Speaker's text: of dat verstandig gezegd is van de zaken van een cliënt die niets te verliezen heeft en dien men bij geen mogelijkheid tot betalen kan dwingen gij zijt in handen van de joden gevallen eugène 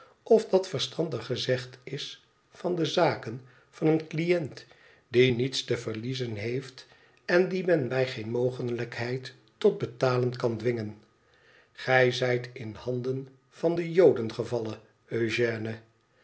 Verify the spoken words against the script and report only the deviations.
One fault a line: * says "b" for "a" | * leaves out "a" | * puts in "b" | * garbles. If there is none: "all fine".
all fine